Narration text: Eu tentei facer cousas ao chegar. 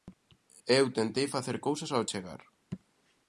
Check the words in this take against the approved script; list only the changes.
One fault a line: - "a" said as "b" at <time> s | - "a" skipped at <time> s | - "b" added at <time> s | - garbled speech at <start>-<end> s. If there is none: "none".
none